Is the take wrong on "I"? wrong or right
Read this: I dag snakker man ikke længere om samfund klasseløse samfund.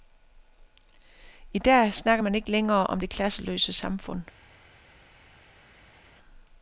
right